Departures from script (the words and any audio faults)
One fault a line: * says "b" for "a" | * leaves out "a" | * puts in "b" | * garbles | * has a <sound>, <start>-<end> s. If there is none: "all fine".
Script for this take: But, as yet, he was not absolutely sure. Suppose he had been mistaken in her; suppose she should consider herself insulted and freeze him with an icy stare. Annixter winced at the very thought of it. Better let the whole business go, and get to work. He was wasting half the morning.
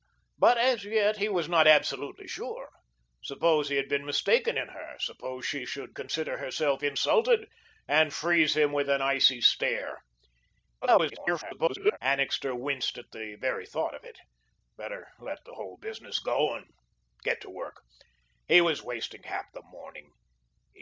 * garbles